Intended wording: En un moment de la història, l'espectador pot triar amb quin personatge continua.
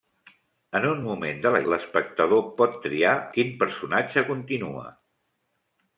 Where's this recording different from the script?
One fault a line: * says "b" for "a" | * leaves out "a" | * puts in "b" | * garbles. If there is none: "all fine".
* leaves out "història"
* leaves out "amb"